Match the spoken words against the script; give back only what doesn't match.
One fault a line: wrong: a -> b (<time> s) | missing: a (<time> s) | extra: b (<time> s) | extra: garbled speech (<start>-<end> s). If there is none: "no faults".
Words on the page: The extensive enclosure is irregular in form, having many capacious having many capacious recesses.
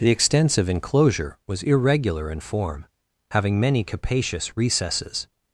wrong: is -> was (1.4 s)
missing: having many capacious (4.6 s)